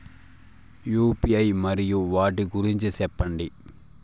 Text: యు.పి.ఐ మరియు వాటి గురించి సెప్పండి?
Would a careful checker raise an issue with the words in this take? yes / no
no